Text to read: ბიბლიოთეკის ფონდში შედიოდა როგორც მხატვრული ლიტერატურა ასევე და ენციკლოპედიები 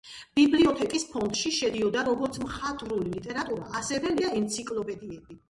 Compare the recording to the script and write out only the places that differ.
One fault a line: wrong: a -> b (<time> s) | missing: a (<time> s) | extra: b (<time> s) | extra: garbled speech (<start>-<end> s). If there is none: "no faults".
no faults